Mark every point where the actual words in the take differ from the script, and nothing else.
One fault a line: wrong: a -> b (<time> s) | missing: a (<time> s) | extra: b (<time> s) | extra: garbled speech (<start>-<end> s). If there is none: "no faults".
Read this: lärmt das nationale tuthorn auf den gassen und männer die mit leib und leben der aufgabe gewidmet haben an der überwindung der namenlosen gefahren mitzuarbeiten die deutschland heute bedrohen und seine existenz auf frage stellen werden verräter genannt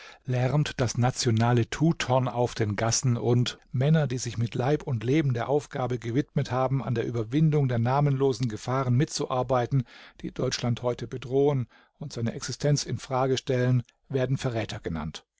extra: sich (4.2 s)
wrong: auf -> in (12.8 s)